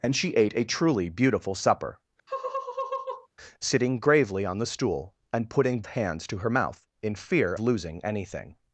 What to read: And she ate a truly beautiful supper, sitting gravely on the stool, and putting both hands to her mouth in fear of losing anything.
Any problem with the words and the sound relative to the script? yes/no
yes